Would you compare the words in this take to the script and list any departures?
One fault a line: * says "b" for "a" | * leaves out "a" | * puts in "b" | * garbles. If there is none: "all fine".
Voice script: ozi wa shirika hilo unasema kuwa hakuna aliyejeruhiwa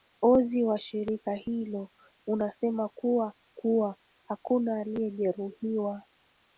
* puts in "kuwa"